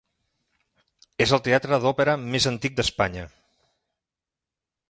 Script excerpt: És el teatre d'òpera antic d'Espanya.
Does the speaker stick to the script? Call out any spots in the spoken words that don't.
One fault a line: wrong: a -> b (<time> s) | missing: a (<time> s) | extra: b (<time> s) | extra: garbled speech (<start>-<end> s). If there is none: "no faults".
extra: més (2.2 s)